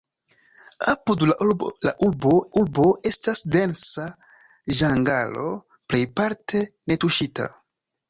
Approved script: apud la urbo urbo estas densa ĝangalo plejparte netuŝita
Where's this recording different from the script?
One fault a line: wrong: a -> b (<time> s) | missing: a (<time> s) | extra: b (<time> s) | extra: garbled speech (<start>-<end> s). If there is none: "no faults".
no faults